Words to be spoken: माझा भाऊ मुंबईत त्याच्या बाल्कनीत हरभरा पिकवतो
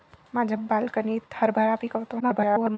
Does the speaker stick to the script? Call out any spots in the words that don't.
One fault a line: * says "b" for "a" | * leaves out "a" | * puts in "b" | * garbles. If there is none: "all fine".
* leaves out "भाऊ मुंबईत त्याच्या"
* garbles